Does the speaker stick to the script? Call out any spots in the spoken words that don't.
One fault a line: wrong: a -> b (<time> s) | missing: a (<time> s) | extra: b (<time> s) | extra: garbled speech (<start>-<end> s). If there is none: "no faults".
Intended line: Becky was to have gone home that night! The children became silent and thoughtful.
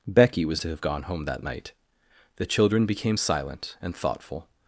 no faults